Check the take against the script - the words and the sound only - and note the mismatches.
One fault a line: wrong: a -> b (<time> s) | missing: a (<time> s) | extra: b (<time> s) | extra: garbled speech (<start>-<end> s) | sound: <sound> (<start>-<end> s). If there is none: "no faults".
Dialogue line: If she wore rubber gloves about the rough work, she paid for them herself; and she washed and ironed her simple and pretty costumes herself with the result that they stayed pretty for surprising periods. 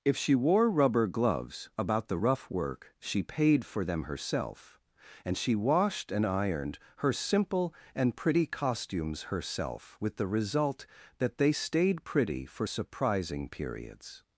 no faults